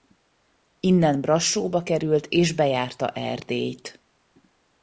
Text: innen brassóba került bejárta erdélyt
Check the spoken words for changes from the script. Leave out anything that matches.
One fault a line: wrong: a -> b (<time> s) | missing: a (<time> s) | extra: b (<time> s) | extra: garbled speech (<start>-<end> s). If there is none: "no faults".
extra: és (2.3 s)